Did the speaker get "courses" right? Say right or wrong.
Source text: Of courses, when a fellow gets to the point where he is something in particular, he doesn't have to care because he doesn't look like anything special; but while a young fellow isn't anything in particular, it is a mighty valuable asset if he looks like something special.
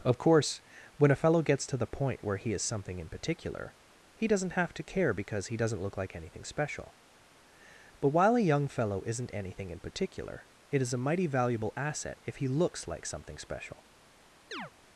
wrong